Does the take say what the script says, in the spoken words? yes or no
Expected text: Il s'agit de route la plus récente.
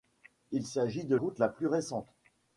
yes